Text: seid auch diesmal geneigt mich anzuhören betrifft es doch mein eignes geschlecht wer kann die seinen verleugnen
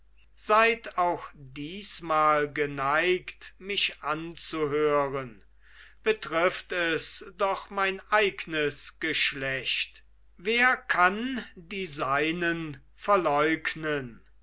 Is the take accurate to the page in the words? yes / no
yes